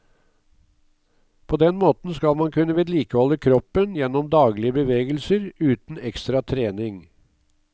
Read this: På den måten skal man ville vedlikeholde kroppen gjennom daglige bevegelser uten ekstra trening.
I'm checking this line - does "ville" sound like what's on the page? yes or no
no